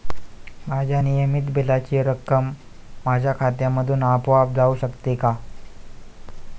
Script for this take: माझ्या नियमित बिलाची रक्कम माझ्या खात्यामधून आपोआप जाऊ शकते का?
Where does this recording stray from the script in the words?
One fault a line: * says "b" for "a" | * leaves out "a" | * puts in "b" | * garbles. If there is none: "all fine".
all fine